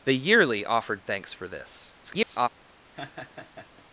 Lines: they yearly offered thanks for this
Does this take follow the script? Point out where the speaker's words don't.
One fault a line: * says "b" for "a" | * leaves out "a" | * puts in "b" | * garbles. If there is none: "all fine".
* garbles